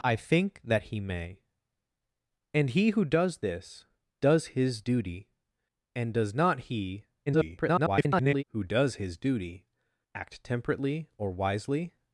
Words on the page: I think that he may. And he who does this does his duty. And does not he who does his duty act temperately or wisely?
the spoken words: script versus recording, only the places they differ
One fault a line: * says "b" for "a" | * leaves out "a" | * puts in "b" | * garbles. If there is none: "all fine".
* garbles